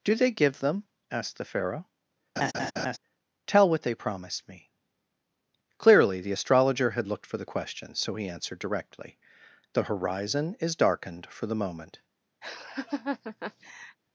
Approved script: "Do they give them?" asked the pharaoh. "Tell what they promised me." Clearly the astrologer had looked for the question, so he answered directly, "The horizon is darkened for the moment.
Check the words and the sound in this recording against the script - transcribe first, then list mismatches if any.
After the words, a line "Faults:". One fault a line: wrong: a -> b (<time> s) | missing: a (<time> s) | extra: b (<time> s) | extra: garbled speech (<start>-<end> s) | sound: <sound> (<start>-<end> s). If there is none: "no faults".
"Do they give them?" asked the pharaoh. "Tell what they promised me." Clearly the astrologer had looked for the question, so he answered directly, "The horizon is darkened for the moment.
Faults:
sound: laugh (2.4-3.0 s)
sound: laugh (12.4-14.0 s)